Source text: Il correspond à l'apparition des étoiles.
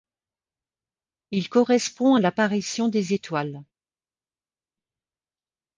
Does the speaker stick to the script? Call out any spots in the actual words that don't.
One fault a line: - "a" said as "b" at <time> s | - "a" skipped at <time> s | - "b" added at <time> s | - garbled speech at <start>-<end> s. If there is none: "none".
none